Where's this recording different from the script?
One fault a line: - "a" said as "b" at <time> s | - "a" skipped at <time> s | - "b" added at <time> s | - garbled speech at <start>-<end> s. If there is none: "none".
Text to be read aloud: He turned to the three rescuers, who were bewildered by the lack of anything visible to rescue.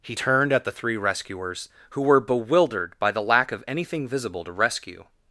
- "to" said as "at" at 0.5 s